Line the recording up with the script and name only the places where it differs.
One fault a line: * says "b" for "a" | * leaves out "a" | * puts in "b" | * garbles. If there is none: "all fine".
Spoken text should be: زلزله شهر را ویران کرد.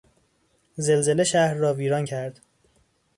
all fine